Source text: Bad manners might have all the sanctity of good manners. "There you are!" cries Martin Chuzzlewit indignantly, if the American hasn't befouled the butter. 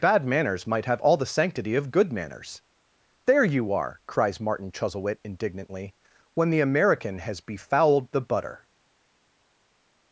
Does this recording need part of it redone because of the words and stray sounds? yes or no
yes